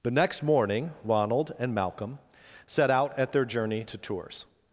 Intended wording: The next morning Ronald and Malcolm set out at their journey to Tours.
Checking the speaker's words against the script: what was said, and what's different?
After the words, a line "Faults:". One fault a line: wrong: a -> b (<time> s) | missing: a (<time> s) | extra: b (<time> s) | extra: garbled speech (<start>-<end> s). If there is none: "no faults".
The next morning Ronald and Malcolm set out at their journey to Tours.
Faults:
no faults